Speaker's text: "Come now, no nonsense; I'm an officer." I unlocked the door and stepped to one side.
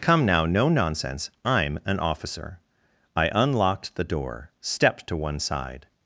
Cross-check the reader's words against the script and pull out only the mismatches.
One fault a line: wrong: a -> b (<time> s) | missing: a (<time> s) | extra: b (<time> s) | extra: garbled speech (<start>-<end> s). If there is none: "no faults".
missing: and (4.5 s)